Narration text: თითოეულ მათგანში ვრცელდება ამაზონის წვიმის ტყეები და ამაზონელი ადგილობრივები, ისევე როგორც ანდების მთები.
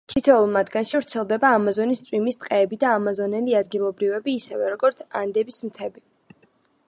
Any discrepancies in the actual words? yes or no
no